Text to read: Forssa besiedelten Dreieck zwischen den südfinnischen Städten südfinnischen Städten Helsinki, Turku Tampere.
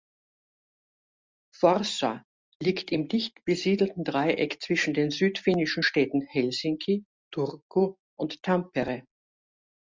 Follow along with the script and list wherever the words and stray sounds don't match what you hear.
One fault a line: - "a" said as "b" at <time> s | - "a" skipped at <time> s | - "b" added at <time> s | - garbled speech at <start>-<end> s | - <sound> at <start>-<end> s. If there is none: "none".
- "liegt im dicht" added at 2.6 s
- "südfinnischen Städten" skipped at 6.2 s
- "und" added at 8.2 s